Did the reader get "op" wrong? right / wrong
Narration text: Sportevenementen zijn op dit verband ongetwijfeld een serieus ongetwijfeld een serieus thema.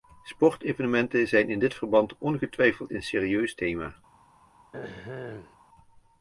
wrong